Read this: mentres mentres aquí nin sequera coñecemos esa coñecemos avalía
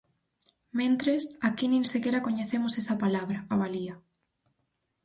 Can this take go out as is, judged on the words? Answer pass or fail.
fail